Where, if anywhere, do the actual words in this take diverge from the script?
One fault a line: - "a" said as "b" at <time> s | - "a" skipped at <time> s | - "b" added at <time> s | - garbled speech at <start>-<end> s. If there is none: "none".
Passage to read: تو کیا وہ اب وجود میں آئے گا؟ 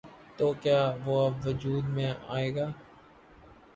none